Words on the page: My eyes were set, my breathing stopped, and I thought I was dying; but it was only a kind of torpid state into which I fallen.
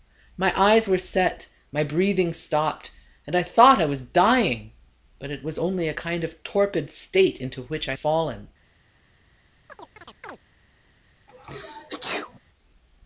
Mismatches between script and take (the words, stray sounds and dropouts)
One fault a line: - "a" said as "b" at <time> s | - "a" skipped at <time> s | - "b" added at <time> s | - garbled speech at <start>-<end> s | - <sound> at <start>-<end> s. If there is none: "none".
- chirp at 9.7-10.4 s
- sneeze at 11.3-12.4 s